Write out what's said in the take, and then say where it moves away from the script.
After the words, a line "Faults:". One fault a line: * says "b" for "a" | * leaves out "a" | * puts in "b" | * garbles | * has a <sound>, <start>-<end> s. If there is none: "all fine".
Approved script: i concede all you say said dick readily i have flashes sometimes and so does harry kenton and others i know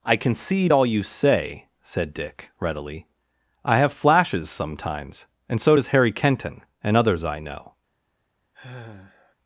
i concede all you say said dick readily i have flashes sometimes and so does harry kenton and others i know
Faults:
* has a sigh, 8.5-9.3 s